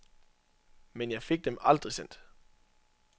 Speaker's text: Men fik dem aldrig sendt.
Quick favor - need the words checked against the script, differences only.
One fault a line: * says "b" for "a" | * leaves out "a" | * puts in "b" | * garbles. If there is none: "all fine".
* puts in "jeg"